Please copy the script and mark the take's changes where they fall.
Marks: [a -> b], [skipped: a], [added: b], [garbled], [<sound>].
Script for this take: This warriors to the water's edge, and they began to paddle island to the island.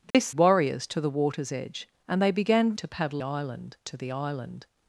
This [dropout] warriors to the water's edge, and they began to paddle island to the island.